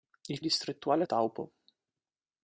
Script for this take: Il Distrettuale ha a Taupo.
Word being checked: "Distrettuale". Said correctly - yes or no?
yes